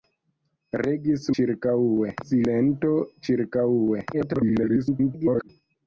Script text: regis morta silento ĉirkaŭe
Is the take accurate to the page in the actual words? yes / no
no